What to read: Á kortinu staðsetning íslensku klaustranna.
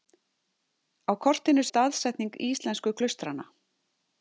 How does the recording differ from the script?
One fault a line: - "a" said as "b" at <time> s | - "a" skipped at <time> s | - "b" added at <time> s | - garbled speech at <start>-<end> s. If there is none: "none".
none